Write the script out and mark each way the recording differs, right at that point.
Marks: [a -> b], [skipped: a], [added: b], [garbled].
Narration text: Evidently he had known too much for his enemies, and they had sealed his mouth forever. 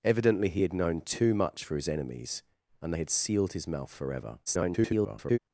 Evidently he had known too much for his enemies, and they had sealed his mouth forever. [garbled]